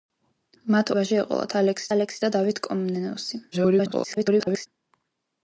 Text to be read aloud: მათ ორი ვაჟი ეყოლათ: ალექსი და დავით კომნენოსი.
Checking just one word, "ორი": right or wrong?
wrong